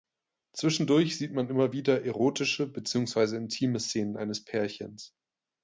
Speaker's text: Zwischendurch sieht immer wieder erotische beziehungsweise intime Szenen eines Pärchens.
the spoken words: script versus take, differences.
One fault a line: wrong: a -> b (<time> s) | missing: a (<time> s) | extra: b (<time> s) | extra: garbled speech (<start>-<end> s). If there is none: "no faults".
extra: man (1.3 s)